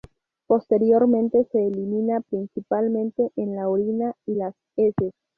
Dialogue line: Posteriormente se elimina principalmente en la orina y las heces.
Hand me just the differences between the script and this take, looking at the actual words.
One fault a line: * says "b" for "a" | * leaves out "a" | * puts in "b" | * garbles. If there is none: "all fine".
all fine